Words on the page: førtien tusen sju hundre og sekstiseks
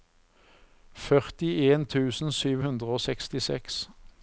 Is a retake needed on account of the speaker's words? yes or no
no